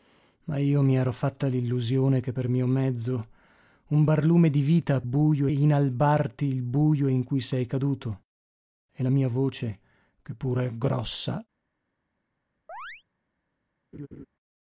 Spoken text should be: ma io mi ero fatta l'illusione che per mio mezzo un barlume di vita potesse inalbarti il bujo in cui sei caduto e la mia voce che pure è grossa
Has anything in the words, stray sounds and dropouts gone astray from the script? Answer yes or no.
yes